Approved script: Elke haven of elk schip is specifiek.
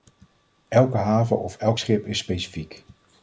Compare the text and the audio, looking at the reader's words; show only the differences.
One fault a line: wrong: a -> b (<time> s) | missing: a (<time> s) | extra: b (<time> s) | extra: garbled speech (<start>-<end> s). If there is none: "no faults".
no faults